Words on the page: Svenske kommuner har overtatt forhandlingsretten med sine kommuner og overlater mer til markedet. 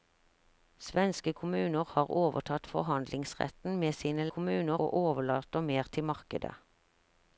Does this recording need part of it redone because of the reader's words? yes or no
no